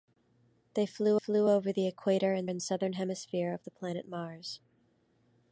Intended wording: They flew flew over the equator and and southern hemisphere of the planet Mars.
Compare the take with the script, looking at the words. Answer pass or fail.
pass